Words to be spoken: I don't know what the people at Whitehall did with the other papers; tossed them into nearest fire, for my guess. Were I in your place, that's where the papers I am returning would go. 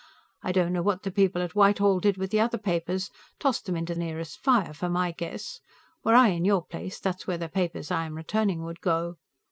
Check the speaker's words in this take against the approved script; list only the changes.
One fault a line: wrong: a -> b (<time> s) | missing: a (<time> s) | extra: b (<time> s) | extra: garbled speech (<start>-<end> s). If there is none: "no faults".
no faults